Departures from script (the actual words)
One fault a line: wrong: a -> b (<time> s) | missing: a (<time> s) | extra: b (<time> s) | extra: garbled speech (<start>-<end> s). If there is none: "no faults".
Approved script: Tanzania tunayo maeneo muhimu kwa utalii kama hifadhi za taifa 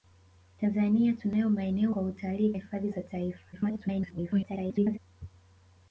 missing: muhimu (1.9 s)
missing: kama (2.5 s)
extra: garbled speech (3.5-5.0 s)